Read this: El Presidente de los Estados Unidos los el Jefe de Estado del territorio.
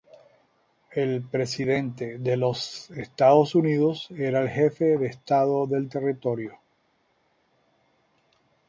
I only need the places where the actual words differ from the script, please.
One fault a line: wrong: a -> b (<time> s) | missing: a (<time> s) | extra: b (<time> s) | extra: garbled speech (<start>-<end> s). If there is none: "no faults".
wrong: los -> era (4.1 s)